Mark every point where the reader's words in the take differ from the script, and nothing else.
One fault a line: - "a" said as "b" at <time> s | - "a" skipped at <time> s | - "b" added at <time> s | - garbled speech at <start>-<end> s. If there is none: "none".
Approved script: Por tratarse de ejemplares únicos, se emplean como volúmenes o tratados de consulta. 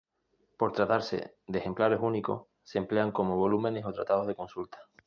none